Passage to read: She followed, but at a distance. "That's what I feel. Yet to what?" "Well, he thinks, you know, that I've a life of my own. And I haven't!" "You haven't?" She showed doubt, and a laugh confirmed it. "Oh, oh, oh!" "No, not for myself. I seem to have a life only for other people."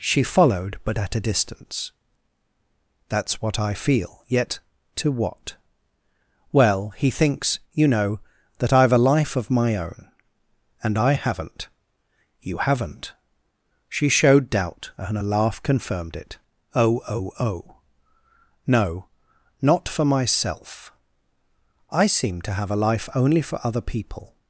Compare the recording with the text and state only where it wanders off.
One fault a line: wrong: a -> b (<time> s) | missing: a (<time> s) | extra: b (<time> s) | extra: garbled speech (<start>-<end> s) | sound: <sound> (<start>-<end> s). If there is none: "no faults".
no faults